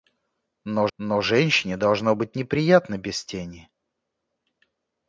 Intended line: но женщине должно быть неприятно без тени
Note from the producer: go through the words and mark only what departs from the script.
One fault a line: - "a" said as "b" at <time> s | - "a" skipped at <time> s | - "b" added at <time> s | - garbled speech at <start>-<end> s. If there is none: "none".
- "но" added at 1.0 s